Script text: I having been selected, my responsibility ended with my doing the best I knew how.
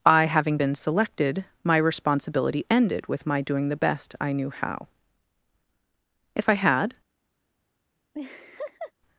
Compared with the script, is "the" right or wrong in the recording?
right